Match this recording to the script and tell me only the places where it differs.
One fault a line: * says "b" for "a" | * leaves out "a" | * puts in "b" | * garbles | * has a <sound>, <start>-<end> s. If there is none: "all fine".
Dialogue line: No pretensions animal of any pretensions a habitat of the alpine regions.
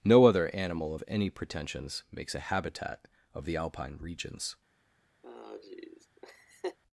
* says "other" for "pretensions"
* puts in "makes"
* has a laugh, 5.2-6.8 s